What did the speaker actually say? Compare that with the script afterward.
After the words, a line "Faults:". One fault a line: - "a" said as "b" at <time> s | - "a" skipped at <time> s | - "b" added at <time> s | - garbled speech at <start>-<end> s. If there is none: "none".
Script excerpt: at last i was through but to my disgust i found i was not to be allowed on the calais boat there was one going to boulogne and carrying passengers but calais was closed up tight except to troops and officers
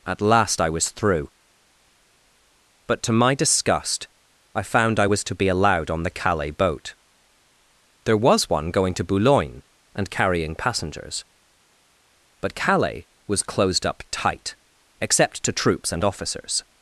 at last i was through but to my disgust i found i was to be allowed on the calais boat there was one going to boulogne and carrying passengers but calais was closed up tight except to troops and officers
Faults:
- "not" skipped at 5.2 s